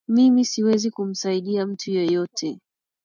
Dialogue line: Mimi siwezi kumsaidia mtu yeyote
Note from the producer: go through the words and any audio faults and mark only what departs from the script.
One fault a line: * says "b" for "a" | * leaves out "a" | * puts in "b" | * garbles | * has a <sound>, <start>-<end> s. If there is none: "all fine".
all fine